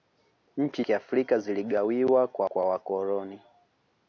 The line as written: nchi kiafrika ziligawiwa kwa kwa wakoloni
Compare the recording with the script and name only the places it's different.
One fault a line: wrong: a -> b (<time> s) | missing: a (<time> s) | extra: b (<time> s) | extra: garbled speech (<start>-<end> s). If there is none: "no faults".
no faults